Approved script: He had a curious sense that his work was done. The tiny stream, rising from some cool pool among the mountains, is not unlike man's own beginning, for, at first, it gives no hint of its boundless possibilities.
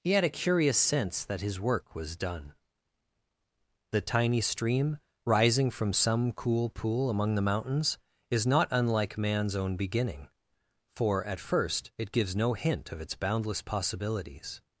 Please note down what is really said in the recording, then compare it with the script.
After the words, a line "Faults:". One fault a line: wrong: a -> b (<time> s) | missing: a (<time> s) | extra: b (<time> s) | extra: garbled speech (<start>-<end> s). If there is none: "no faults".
He had a curious sense that his work was done. The tiny stream, rising from some cool pool among the mountains, is not unlike man's own beginning, for, at first, it gives no hint of its boundless possibilities.
Faults:
no faults